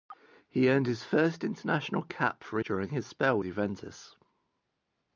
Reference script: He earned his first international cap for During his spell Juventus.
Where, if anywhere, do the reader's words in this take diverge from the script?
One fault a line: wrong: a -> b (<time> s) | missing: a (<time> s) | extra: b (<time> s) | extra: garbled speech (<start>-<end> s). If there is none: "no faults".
no faults